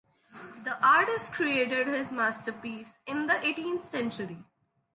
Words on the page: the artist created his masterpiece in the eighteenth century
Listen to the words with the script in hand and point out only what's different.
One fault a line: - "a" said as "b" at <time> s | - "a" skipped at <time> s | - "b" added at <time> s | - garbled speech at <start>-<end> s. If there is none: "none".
none